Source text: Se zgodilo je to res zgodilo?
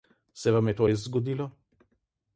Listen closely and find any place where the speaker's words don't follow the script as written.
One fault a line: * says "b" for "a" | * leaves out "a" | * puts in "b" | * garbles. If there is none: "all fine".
* says "vam" for "zgodilo"